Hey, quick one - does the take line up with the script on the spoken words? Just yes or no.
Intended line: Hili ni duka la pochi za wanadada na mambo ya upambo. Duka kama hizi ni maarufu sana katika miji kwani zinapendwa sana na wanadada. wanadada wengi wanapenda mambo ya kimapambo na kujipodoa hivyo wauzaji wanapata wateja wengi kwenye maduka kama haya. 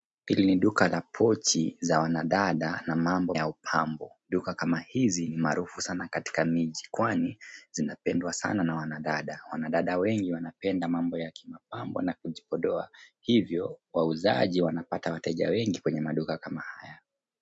yes